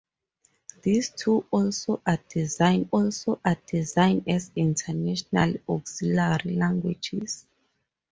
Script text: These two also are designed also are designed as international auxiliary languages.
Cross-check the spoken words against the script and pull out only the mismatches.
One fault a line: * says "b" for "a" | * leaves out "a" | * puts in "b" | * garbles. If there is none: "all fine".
all fine